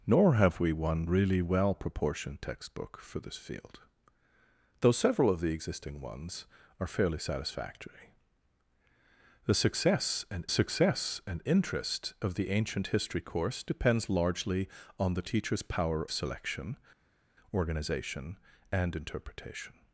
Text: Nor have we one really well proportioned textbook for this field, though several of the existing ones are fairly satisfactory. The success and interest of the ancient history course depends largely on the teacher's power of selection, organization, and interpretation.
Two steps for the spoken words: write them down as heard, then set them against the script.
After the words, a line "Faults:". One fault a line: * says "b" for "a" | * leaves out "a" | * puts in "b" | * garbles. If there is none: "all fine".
Nor have we one really well proportioned textbook for this field, though several of the existing ones are fairly satisfactory. The success and success and interest of the ancient history course depends largely on the teacher's power selection, organization, and interpretation.
Faults:
* puts in "success and"
* leaves out "of"